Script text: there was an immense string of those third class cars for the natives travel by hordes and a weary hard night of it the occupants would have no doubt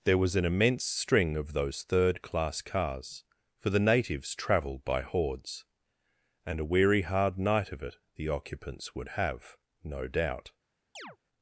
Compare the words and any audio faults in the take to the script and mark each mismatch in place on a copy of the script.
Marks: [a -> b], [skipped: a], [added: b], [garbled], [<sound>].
there was an immense string of those third class cars for the natives [travel -> travelled] by hordes and a weary hard night of it the occupants would have no doubt [chirp]